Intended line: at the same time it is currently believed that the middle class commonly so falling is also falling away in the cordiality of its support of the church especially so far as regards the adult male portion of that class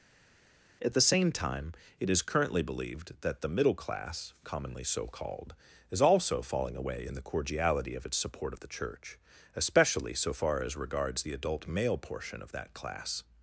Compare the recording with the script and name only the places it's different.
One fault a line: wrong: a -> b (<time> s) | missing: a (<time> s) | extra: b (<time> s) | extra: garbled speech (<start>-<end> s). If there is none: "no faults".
wrong: falling -> called (5.1 s)